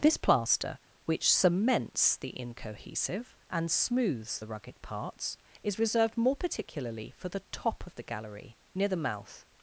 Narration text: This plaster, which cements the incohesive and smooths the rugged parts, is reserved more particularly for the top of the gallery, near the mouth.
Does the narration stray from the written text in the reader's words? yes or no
no